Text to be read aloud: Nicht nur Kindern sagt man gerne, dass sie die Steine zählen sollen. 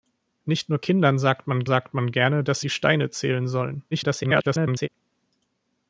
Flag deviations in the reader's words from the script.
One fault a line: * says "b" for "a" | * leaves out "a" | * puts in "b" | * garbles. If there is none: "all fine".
* puts in "sagt man"
* leaves out "sie"
* garbles